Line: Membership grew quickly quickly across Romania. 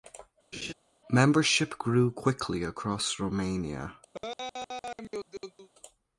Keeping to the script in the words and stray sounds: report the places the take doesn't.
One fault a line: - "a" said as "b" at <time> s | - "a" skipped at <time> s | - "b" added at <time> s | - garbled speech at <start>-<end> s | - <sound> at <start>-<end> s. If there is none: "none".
- laugh at 0.5-0.7 s
- "quickly" skipped at 2.6 s
- laugh at 4.1-5.7 s